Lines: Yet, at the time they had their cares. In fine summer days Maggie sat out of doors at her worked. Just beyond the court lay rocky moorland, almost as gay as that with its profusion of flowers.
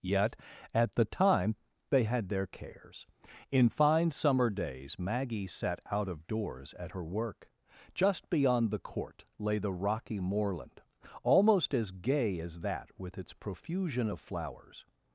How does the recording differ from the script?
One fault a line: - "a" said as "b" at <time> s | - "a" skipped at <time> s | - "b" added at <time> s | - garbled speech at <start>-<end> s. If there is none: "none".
- "worked" said as "work" at 7.0 s
- "the" added at 9.6 s